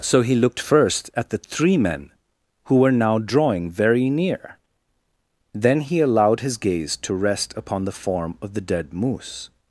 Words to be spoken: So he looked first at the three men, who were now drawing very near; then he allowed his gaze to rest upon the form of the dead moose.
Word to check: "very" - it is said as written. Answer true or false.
true